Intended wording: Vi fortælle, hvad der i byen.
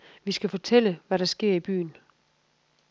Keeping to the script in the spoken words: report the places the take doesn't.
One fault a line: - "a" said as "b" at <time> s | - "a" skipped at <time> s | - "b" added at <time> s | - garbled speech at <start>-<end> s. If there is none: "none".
- "skal" added at 0.3 s
- "sker" added at 1.3 s